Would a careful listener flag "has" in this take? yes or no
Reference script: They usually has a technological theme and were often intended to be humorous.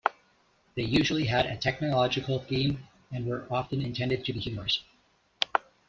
yes